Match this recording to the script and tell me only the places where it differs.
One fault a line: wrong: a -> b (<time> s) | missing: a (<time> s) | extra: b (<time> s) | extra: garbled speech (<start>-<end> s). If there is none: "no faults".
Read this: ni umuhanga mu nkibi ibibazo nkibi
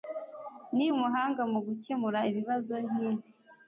wrong: nkibi -> gukemura (1.7 s)